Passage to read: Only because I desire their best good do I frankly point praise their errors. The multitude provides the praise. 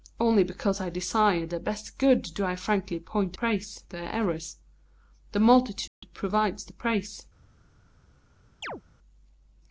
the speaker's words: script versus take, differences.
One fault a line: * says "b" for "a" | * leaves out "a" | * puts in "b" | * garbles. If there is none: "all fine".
all fine